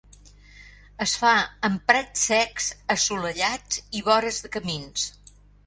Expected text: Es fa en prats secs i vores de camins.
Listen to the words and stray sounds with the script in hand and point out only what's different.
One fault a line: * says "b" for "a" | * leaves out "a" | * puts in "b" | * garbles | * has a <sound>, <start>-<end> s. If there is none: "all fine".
* puts in "assolellats"